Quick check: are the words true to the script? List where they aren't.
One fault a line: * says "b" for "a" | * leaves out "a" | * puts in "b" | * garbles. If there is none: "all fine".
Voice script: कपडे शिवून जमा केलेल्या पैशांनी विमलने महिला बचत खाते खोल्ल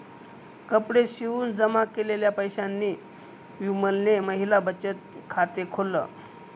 all fine